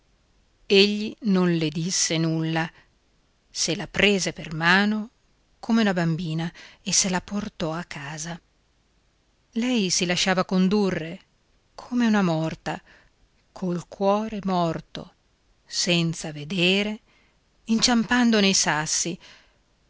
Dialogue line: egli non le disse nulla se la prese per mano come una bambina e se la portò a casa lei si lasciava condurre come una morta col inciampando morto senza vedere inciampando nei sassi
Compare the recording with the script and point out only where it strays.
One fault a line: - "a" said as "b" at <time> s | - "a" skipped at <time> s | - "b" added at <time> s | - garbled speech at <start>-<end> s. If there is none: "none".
- "inciampando" said as "cuore" at 13.9 s